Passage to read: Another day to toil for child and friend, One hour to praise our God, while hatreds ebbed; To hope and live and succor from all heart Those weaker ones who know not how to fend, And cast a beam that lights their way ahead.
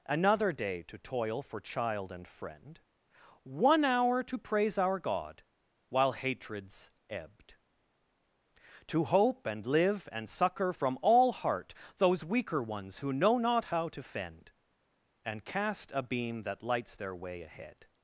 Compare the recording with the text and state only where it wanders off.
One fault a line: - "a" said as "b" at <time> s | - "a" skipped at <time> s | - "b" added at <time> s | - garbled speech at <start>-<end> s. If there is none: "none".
none